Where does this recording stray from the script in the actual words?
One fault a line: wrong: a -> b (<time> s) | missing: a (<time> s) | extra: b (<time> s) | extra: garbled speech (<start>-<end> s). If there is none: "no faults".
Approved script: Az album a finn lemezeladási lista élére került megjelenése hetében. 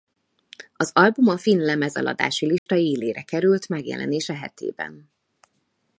no faults